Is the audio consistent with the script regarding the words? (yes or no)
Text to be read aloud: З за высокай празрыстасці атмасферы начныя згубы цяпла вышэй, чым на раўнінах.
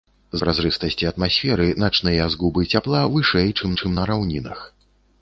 no